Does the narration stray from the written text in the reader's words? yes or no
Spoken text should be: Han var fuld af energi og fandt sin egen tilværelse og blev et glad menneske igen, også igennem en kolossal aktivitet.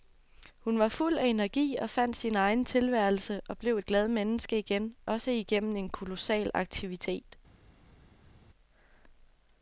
yes